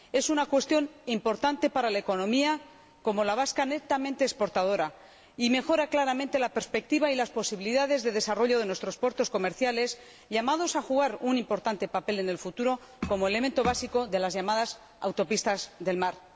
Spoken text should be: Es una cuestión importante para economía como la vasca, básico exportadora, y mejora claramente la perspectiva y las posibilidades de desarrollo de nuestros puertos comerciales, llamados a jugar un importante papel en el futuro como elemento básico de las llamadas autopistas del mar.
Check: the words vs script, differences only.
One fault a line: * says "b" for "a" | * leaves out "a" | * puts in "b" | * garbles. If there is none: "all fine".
* puts in "una"
* says "netamente" for "básico"